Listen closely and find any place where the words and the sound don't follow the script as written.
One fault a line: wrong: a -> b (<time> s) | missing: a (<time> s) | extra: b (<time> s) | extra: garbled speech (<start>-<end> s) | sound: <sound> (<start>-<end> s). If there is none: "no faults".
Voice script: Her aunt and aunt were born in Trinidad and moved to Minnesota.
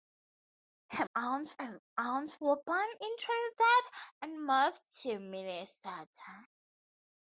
no faults